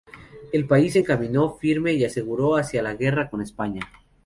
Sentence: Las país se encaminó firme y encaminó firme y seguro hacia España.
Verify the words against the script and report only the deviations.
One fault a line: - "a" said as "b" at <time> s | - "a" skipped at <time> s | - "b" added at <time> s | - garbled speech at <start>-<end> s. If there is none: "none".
- "Las" said as "El" at 0.5 s
- "encaminó firme y seguro hacia" said as "seguro hacia la guerra con" at 2.1 s